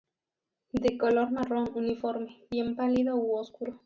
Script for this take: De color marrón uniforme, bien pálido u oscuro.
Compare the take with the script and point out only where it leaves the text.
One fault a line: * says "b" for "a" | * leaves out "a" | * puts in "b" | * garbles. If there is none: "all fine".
all fine